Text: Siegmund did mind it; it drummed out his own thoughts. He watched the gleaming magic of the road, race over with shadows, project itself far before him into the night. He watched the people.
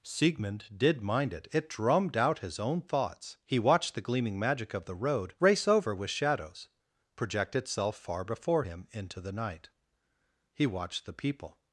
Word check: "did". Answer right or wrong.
right